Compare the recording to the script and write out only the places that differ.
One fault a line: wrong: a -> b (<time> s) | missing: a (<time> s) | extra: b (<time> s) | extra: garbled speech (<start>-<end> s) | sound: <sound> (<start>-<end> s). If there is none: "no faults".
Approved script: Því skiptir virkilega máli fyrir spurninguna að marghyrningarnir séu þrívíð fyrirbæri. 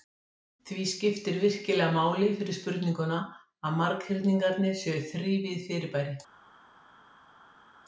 no faults